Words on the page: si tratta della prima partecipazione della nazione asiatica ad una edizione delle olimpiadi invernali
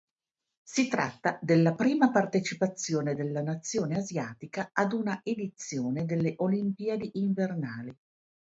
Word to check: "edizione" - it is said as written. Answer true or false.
true